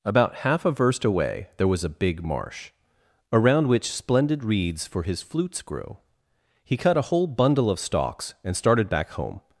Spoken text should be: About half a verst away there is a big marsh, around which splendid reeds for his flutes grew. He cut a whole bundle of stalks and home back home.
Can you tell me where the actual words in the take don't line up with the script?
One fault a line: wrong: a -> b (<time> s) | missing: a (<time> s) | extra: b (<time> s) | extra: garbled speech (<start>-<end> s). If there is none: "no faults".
wrong: is -> was (1.7 s)
wrong: home -> started (8.6 s)